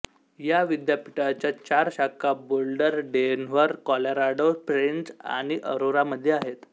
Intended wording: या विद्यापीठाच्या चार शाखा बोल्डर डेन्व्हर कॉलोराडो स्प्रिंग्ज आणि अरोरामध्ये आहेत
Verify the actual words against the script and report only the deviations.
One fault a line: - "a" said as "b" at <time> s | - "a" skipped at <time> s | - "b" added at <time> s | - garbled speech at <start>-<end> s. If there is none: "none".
none